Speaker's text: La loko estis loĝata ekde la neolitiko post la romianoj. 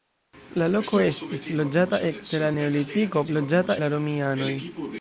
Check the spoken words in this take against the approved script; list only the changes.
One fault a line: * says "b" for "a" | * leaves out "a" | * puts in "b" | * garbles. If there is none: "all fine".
* says "loĝata" for "post"